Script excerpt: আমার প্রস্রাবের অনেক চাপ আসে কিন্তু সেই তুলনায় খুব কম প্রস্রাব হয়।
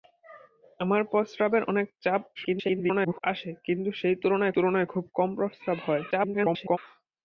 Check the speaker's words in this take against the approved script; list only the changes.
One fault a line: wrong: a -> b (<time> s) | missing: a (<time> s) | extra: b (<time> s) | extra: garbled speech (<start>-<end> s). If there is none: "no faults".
extra: garbled speech (2.3-3.2 s)
extra: তুলনায় (4.5 s)
extra: garbled speech (6.1-6.8 s)